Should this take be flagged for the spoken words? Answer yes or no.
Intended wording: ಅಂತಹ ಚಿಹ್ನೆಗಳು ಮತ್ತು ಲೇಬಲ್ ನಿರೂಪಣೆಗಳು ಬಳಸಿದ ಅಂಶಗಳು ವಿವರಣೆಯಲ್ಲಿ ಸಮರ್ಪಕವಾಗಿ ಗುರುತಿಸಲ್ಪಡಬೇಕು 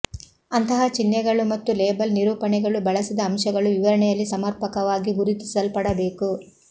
no